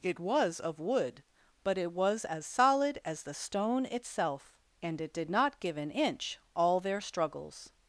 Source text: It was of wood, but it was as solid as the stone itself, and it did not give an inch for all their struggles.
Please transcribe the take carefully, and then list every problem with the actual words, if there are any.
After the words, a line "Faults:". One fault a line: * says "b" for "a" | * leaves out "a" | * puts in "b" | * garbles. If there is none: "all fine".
It was of wood, but it was as solid as the stone itself, and it did not give an inch all their struggles.
Faults:
* leaves out "for"